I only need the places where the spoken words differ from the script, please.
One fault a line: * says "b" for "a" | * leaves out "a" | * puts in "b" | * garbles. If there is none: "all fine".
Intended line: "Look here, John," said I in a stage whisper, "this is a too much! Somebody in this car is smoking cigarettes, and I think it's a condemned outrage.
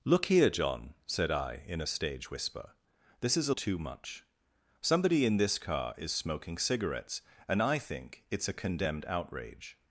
all fine